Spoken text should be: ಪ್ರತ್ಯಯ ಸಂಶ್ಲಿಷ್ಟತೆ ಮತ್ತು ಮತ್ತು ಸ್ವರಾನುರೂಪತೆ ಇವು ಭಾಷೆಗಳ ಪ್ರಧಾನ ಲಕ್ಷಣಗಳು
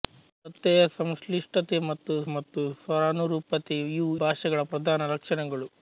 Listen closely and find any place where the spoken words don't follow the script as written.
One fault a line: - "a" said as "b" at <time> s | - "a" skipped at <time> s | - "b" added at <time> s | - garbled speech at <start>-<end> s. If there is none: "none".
none